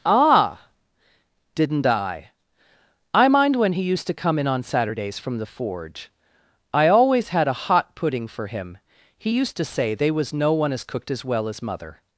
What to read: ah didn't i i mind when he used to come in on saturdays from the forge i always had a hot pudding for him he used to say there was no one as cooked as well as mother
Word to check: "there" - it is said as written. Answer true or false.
false